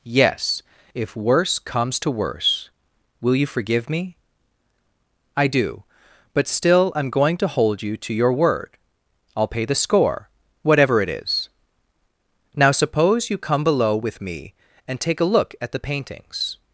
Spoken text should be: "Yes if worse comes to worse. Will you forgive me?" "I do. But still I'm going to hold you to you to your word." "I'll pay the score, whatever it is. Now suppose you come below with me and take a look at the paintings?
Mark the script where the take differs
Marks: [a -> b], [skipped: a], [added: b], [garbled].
"Yes if worse comes to worse. Will you forgive me?" "I do. But still I'm going to hold you to [skipped: you to] your word." "I'll pay the score, whatever it is. Now suppose you come below with me and take a look at the paintings?